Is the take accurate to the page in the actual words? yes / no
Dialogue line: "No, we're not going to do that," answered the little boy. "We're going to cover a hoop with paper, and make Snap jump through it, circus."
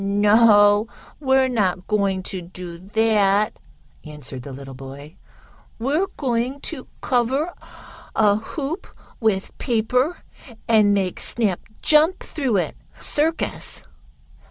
yes